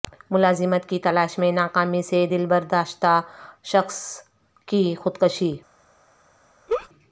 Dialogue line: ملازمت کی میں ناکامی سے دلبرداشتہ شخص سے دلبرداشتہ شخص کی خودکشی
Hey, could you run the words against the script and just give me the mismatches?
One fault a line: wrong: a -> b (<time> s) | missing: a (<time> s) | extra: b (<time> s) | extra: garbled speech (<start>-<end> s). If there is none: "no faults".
extra: تلاش (1.0 s)
missing: سے دلبرداشتہ شخص (4.0 s)